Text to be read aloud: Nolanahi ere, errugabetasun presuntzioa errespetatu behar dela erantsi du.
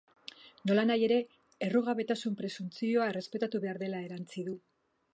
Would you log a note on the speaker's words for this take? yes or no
no